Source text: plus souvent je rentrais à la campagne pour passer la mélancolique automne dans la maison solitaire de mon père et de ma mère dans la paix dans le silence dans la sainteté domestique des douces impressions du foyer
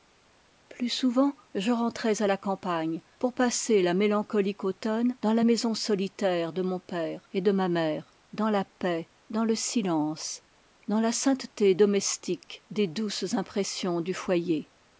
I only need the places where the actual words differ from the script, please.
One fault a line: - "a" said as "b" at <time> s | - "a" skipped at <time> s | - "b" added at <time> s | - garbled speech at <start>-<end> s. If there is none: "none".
none